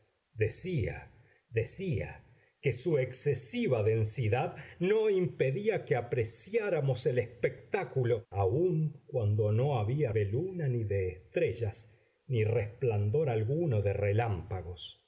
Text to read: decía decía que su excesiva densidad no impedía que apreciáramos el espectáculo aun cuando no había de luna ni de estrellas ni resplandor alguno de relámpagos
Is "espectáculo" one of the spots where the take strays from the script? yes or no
no